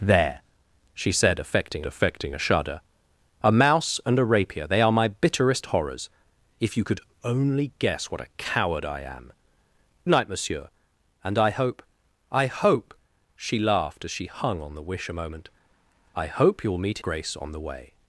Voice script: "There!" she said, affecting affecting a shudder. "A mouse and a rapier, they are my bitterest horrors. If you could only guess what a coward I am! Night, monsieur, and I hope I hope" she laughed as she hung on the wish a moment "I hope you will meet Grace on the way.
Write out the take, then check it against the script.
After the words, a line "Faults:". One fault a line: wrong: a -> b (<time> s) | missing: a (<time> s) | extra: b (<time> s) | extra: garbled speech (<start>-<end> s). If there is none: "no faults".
"There!" she said, affecting affecting a shudder. "A mouse and a rapier, they are my bitterest horrors. If you could only guess what a coward I am! Night, monsieur, and I hope I hope" she laughed as she hung on the wish a moment "I hope you will meet Grace on the way.
Faults:
no faults